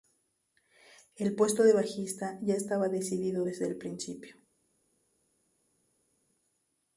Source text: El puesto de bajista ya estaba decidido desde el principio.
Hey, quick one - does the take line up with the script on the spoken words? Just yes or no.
yes